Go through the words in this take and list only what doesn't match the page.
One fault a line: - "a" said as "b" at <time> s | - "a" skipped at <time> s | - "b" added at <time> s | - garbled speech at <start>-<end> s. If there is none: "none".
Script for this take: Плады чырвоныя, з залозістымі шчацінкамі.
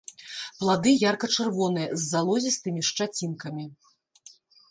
- "ярка" added at 1.1 s